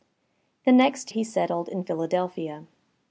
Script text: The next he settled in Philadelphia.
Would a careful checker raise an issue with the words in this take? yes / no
no